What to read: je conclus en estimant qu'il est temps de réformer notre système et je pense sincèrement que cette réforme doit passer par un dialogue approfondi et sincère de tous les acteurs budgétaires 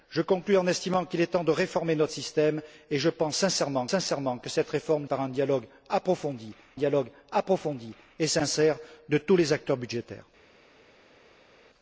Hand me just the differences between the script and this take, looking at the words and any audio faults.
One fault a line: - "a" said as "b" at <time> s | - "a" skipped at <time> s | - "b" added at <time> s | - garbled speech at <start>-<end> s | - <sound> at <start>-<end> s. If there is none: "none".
- "sincèrement" added at 3.9 s
- "doit passer par un" said as "par un dialogue approfondi" at 5.1 s